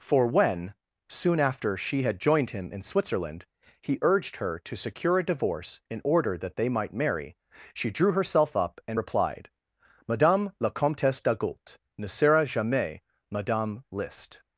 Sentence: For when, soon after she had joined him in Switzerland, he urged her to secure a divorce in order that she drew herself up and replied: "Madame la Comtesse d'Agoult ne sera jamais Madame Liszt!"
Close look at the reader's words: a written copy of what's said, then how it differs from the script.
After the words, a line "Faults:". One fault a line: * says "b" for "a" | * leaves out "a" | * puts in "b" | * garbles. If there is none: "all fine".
For when, soon after she had joined him in Switzerland, he urged her to secure a divorce in order that they might marry, she drew herself up and replied: "Madame la Comtesse d'Agoult ne sera jamais Madame Liszt!"
Faults:
* puts in "they might marry"